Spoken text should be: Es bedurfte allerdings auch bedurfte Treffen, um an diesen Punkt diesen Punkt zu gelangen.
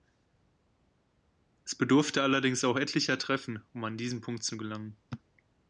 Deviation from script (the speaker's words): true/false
true